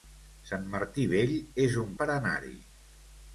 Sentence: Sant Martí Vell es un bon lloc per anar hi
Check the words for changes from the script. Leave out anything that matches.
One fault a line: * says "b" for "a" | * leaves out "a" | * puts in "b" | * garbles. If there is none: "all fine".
* leaves out "bon lloc"